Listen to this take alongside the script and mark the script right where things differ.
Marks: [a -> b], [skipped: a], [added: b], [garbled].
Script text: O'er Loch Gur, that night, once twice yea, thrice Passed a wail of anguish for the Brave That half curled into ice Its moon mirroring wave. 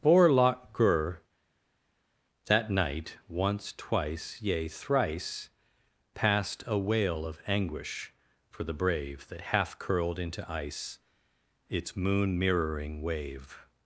O'er Loch Gur, that night, once twice yea, thrice Passed a wail of anguish for the Brave That half curled into ice Its moon mirroring wave.